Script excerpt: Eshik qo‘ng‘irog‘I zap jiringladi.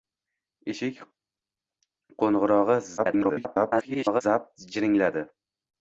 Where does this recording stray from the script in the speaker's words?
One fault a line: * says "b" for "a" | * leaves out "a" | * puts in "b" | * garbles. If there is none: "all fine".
* garbles